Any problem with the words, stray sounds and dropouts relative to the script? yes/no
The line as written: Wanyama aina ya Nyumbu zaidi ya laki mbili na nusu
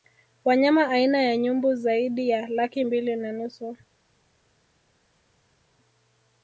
no